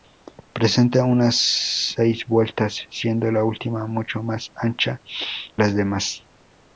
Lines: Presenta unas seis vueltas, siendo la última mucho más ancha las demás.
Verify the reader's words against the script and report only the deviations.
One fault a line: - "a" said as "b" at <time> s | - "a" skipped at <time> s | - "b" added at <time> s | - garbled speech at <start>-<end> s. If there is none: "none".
none